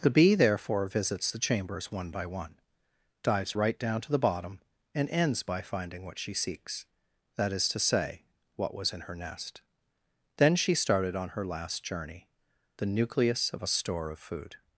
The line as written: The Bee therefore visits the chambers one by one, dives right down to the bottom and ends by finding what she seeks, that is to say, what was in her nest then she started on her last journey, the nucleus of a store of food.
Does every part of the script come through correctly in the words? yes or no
yes